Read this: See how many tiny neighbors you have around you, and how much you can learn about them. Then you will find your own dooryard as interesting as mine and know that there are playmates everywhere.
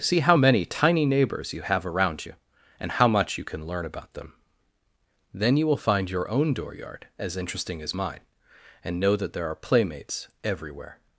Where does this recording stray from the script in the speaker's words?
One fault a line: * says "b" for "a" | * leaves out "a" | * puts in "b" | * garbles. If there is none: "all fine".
all fine